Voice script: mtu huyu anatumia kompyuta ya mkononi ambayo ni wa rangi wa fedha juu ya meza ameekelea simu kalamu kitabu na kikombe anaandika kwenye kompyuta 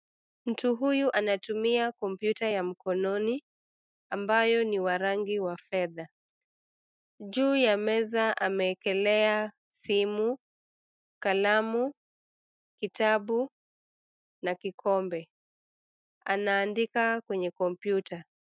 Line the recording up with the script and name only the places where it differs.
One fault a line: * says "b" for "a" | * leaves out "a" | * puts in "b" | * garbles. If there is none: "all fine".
all fine